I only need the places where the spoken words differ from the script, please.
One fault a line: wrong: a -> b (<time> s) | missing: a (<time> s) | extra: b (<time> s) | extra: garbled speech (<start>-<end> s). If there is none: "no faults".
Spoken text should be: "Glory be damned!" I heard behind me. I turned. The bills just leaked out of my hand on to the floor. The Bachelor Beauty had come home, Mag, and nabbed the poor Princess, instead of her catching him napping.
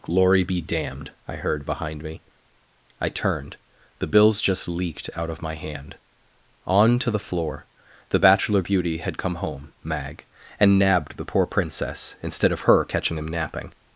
no faults